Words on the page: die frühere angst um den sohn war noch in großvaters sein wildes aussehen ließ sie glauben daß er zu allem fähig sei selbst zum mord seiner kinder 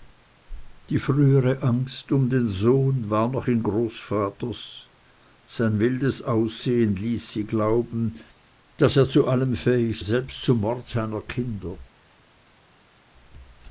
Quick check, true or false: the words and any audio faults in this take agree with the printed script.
false